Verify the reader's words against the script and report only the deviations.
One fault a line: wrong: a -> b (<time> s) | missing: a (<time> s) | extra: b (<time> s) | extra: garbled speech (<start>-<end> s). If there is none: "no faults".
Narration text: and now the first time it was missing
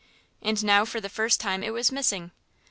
extra: for (0.8 s)